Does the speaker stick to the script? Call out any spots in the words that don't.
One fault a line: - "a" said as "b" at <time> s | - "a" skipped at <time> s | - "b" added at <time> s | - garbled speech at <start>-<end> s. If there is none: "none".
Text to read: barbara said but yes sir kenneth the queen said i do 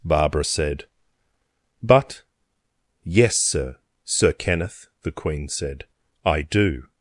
- "sir" added at 4.0 s